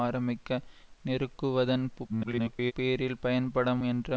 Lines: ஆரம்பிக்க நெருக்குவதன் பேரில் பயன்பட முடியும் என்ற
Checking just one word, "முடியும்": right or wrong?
wrong